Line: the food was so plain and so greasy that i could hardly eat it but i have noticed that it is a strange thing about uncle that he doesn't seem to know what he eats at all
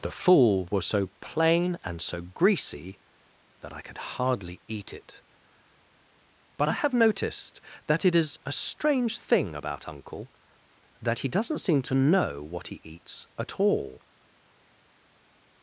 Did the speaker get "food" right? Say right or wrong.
wrong